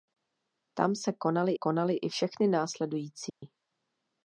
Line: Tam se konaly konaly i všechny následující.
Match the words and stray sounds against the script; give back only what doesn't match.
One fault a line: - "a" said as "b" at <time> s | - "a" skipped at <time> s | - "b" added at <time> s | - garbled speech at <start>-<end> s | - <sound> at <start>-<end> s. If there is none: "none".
- dropout at 3.3-3.4 s